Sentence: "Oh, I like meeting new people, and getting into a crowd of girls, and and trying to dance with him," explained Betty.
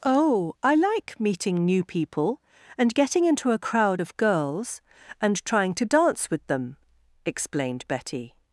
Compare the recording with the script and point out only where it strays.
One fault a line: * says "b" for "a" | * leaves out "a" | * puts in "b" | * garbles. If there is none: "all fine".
* leaves out "and"
* says "them" for "him"